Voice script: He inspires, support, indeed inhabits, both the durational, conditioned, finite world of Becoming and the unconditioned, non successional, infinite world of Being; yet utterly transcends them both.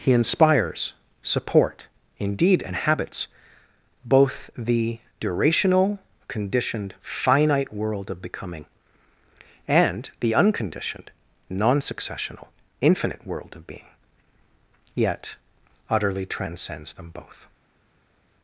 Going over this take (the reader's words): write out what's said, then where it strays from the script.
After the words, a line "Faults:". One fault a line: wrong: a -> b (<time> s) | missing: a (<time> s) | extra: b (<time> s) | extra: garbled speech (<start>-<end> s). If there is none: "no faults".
He inspires, support, indeed inhabits, both the durational, conditioned, finite world of Becoming and the unconditioned, non successional, infinite world of Being; yet utterly transcends them both.
Faults:
no faults